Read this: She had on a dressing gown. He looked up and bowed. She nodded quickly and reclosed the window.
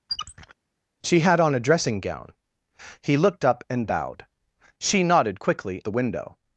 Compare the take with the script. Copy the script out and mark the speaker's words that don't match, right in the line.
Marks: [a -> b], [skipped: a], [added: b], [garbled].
She had on a dressing gown. He looked up and bowed. She nodded quickly [skipped: and reclosed] the window.